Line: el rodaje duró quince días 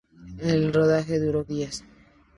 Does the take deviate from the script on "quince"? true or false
true